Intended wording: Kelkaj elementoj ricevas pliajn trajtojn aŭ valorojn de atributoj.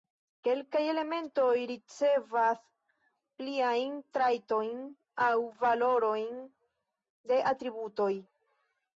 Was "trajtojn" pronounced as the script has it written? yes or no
yes